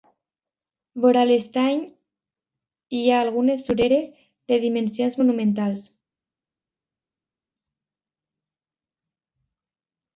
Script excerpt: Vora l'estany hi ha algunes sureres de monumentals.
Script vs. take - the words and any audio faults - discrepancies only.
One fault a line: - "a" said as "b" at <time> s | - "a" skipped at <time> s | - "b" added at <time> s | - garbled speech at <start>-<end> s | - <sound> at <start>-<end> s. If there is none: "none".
- "dimensions" added at 4.7 s